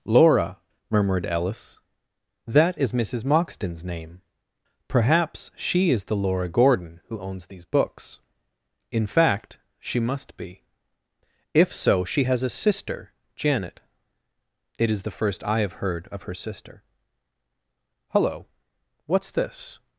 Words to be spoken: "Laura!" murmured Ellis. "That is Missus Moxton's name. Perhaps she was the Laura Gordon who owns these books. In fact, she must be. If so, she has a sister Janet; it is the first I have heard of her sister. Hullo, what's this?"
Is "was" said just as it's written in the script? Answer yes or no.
no